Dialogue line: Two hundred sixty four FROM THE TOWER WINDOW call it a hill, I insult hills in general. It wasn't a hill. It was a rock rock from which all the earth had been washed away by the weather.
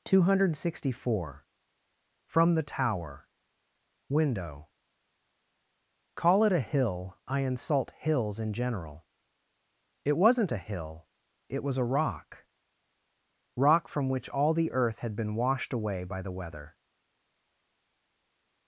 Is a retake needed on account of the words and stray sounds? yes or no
no